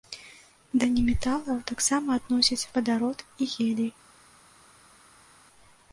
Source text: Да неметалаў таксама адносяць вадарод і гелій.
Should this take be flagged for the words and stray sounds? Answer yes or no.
no